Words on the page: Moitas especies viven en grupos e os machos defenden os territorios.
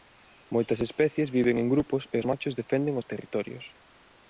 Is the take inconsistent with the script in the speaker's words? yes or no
no